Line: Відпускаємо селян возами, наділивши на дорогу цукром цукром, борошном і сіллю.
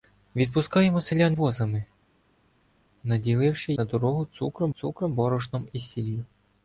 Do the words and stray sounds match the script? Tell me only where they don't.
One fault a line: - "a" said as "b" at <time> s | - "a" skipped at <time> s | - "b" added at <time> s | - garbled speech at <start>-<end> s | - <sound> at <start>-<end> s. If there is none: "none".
none